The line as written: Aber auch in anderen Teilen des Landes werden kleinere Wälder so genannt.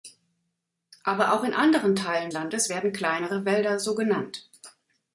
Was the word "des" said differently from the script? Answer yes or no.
yes